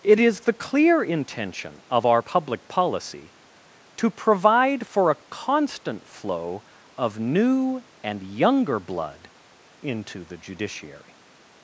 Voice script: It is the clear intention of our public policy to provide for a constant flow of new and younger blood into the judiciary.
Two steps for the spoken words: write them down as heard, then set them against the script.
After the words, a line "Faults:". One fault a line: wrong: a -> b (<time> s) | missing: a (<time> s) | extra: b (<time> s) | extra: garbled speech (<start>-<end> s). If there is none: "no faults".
It is the clear intention of our public policy to provide for a constant flow of new and younger blood into the judiciary.
Faults:
no faults